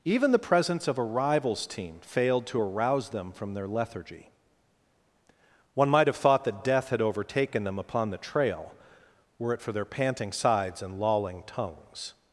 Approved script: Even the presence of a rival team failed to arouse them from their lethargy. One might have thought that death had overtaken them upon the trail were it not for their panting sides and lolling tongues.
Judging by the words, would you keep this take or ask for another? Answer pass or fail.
fail